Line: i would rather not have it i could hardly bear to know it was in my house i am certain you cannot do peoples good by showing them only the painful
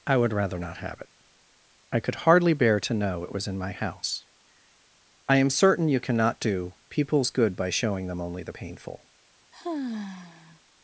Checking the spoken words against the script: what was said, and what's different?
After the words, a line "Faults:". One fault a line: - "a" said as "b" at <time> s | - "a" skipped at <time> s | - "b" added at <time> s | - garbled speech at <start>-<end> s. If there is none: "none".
i would rather not have it i could hardly bear to know it was in my house i am certain you cannot do peoples good by showing them only the painful
Faults:
none